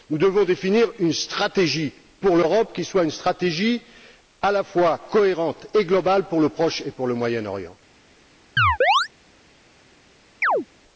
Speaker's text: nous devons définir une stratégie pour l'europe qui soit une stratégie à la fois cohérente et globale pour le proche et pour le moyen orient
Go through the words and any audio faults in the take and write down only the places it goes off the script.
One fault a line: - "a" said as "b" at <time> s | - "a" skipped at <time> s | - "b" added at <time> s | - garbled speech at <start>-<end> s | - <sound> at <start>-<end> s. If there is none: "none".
- chirp at 8.6-9.1 s
- chirp at 10.4-10.7 s